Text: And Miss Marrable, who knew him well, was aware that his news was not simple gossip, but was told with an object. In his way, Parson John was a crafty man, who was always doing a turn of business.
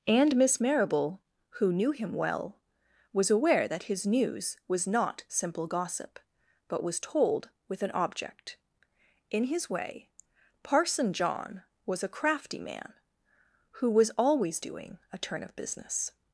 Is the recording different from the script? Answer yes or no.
no